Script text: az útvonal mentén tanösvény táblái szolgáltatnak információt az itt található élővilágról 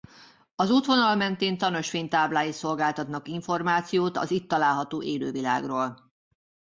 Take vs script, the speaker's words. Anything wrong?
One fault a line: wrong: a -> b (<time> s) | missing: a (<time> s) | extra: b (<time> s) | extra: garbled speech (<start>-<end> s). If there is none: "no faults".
no faults